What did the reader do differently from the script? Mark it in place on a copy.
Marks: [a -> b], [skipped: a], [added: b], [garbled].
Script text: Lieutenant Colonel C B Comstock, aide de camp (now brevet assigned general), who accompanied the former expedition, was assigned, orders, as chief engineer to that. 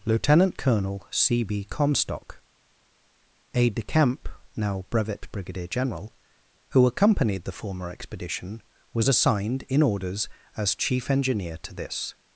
Lieutenant Colonel C B Comstock, aide de camp (now brevet [assigned -> brigadier] general), who accompanied the former expedition, was assigned, [added: in] orders, as chief engineer to [that. -> this]